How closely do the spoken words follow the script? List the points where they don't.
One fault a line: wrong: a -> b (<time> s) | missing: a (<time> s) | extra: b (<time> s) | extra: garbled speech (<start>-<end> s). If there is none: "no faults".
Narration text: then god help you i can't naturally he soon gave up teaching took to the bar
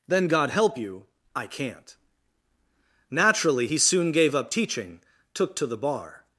no faults